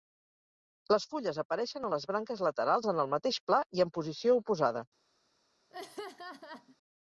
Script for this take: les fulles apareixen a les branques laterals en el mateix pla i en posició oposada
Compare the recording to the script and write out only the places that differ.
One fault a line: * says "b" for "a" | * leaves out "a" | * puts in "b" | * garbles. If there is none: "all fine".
all fine